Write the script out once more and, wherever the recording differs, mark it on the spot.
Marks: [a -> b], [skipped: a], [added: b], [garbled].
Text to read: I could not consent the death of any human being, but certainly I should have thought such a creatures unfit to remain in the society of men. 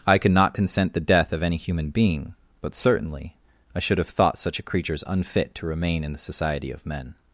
I could not consent the death of any human being, but certainly I should have thought such a creatures unfit to remain in the society of men.